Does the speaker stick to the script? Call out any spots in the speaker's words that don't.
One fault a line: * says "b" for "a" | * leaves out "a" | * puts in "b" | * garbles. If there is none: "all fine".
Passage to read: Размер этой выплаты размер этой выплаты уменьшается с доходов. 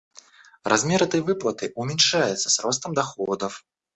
* leaves out "размер этой выплаты"
* puts in "ростом"